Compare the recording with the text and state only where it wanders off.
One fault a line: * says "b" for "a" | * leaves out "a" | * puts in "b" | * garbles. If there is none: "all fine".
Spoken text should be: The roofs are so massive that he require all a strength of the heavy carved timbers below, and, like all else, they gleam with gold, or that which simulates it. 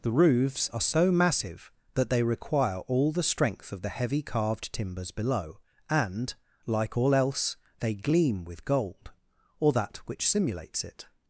* says "they" for "he"
* says "the" for "a"